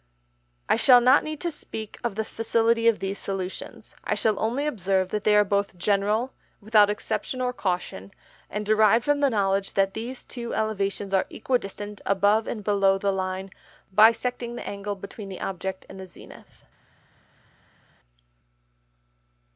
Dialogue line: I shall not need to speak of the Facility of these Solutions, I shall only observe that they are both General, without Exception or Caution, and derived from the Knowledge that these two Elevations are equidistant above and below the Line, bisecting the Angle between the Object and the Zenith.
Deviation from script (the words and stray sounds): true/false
false